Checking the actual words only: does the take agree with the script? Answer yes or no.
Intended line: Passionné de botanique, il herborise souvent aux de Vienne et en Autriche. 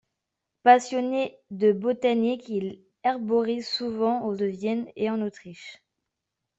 yes